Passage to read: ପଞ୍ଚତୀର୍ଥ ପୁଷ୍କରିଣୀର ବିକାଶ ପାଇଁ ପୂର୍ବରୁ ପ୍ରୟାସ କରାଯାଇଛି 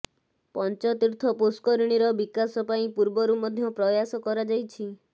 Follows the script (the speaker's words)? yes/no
no